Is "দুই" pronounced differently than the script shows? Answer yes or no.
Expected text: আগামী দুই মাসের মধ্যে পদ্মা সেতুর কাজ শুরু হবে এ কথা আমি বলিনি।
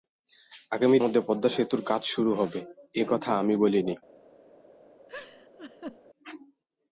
yes